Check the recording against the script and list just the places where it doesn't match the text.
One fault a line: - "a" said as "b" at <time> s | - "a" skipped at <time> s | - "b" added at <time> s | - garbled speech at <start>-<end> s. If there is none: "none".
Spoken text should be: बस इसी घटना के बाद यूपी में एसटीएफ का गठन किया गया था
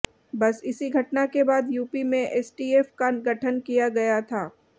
none